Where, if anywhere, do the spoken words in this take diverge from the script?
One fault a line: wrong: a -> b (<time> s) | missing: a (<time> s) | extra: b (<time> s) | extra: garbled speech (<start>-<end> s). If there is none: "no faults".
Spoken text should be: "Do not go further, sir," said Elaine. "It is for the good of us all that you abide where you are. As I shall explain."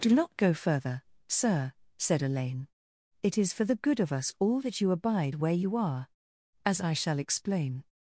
no faults